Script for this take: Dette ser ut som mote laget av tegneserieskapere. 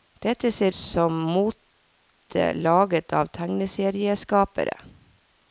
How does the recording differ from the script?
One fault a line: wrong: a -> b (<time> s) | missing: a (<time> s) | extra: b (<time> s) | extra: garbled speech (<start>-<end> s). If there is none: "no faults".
missing: ut (0.8 s)